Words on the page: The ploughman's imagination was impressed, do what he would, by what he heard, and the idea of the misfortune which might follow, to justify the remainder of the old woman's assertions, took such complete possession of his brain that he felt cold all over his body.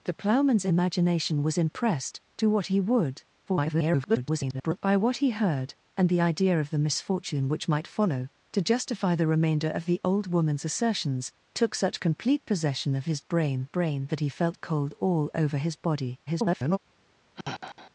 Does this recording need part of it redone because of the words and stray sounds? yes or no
yes